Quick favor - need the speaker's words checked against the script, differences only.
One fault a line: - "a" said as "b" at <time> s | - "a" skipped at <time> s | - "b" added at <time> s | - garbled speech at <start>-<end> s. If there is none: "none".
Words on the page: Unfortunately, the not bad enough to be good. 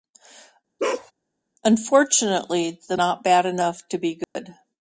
none